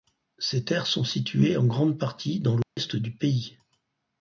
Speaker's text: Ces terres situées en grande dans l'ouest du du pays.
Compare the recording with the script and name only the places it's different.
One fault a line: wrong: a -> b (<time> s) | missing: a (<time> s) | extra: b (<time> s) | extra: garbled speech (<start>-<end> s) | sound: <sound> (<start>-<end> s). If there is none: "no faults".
extra: sont (0.9 s)
extra: partie (2.0 s)
sound: dropout (2.6-2.8 s)
missing: du (3.1 s)